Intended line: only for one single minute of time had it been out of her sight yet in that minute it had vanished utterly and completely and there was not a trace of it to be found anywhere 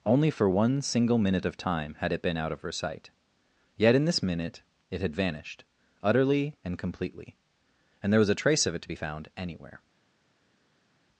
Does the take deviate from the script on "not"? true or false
true